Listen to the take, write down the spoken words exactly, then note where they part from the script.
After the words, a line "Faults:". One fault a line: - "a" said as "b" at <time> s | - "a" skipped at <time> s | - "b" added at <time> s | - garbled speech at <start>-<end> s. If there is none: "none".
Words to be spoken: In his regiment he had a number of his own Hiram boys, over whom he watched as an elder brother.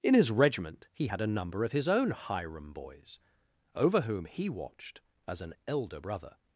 In his regiment he had a number of his own Hiram boys, over whom he watched as an elder brother.
Faults:
none